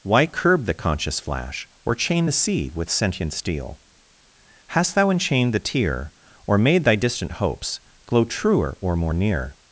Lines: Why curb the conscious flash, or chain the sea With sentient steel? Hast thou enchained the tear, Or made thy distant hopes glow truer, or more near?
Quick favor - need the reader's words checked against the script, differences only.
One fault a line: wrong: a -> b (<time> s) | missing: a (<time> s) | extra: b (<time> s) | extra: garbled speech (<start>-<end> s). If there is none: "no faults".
no faults